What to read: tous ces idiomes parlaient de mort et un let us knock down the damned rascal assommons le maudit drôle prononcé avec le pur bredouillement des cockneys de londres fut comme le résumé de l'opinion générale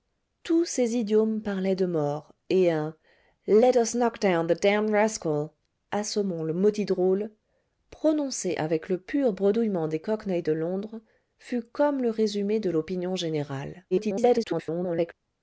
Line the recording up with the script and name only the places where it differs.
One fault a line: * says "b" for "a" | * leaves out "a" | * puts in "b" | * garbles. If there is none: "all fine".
* garbles